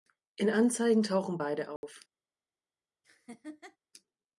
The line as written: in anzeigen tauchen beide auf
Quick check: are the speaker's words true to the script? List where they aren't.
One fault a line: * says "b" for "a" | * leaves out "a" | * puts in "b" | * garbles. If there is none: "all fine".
all fine